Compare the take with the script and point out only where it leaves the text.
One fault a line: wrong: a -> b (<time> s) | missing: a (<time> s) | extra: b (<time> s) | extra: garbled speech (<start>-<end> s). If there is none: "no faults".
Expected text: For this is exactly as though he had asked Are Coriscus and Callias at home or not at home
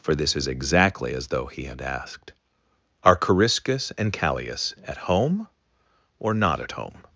no faults